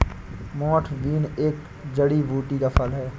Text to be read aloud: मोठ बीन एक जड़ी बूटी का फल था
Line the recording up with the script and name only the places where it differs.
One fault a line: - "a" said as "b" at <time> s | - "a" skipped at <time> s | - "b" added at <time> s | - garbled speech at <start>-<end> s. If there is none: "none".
- "था" said as "है" at 2.9 s